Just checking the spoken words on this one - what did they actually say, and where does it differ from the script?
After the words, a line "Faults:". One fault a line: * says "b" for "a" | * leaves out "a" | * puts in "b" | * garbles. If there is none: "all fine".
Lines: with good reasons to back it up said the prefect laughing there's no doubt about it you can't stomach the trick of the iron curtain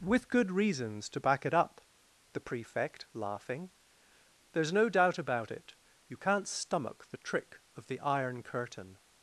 with good reasons to back it up the prefect laughing there's no doubt about it you can't stomach the trick of the iron curtain
Faults:
* leaves out "said"